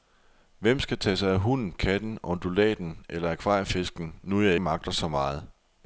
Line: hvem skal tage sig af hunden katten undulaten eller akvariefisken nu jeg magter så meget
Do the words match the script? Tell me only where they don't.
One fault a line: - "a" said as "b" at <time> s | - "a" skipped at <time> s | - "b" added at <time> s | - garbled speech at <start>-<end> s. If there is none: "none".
none